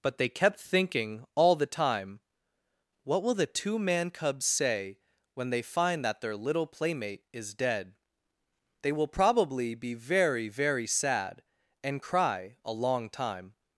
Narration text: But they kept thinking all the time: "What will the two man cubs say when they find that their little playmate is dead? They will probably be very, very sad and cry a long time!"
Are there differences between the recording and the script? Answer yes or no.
no